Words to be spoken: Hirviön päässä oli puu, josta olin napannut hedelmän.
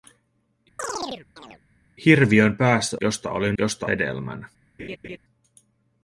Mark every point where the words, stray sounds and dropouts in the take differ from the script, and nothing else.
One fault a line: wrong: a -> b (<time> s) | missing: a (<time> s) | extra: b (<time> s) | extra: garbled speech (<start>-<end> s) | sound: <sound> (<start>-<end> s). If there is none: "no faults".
sound: chirp (0.8-1.6 s)
missing: oli puu (3.0 s)
wrong: napannut -> josta (3.6 s)
sound: laugh (4.8-5.2 s)